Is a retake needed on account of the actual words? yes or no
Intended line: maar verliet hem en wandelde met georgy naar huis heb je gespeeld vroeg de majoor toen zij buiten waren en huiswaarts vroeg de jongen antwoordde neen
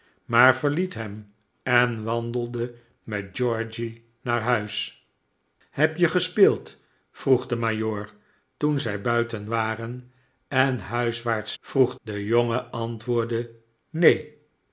no